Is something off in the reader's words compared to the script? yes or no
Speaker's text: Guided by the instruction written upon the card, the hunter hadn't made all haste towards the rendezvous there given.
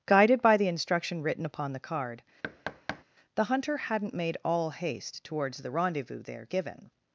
no